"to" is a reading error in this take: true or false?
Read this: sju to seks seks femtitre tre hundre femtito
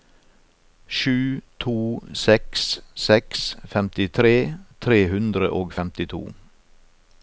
false